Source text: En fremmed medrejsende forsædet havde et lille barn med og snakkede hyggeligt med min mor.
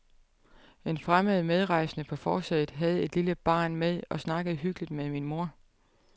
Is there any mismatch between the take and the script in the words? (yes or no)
yes